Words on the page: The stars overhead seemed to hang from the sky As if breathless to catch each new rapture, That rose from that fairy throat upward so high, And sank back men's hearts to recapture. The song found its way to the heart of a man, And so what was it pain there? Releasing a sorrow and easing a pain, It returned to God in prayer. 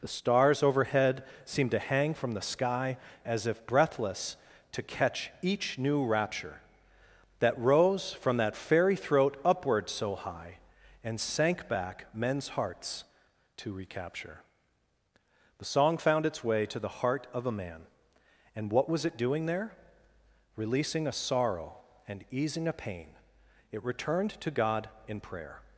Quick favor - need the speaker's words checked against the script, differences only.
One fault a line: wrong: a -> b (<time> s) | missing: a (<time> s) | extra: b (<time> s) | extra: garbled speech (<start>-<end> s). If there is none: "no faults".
missing: so (18.7 s)
wrong: pain -> doing (19.2 s)